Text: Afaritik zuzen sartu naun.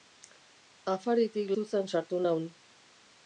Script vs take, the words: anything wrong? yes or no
no